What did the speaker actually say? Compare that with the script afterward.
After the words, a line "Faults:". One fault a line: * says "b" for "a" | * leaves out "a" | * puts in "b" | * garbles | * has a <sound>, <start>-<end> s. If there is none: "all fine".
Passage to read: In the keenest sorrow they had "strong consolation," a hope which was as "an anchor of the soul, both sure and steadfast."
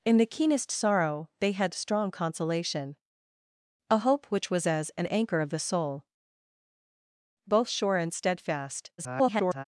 In the keenest sorrow they had "strong consolation," a hope which was as "an anchor of the soul, both sure and steadfast." [garbled]
Faults:
* garbles